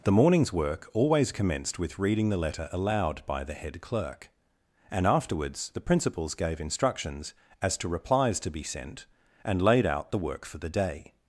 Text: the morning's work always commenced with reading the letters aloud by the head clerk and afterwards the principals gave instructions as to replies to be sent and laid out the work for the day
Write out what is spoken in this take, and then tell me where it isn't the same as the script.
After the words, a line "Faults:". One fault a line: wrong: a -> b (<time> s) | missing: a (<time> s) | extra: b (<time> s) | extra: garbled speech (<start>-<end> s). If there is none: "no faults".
the morning's work always commenced with reading the letter aloud by the head clerk and afterwards the principals gave instructions as to replies to be sent and laid out the work for the day
Faults:
wrong: letters -> letter (2.4 s)